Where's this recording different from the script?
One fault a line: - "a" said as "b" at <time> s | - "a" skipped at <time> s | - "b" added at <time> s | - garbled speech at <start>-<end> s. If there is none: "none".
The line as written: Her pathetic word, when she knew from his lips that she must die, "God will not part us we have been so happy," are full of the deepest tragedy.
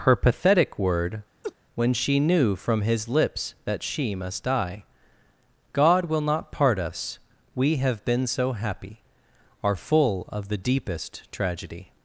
none